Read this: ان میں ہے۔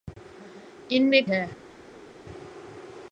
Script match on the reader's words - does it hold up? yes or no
yes